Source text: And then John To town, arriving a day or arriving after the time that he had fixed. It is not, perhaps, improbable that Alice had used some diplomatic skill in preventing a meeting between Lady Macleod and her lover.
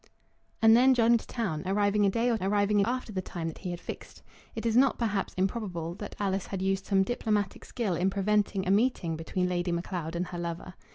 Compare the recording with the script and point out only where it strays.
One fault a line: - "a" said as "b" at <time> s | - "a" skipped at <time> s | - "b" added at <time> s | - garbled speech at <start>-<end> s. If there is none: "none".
none